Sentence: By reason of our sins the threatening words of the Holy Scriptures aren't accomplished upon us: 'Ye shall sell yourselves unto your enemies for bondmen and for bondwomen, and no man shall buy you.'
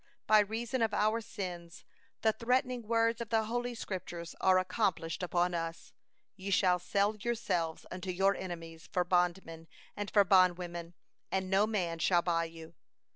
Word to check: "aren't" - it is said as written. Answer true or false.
false